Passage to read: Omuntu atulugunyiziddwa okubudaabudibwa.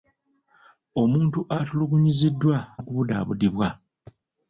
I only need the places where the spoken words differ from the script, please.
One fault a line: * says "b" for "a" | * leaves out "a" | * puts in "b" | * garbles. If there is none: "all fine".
all fine